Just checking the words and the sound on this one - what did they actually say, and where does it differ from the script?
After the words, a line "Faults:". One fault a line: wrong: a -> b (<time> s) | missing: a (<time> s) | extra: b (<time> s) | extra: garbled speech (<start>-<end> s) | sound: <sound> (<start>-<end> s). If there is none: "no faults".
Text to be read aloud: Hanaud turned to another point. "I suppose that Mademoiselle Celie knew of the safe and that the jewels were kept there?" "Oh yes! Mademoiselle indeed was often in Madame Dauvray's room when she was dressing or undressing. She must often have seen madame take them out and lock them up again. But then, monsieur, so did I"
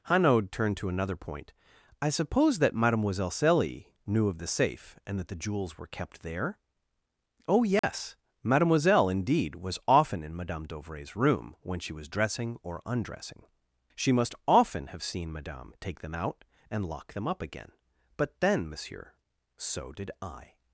Hanaud turned to another point. "I suppose that Mademoiselle Celie knew of the safe and that the jewels were kept there?" "Oh yes! Mademoiselle indeed was often in Madame Dauvray's room when she was dressing or undressing. She must often have seen madame take them out and lock them up again. But then, monsieur, so did I"
Faults:
sound: dropout (7.8-7.8 s)